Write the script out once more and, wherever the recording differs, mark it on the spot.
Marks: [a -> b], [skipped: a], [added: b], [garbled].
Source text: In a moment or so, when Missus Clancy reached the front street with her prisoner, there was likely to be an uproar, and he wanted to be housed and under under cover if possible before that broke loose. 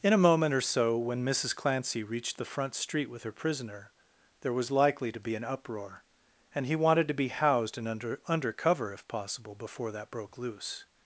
In a moment or so, when Missus Clancy reached the front street with her prisoner, there was likely to be an uproar, and he wanted to be housed and under under cover if possible before that broke loose.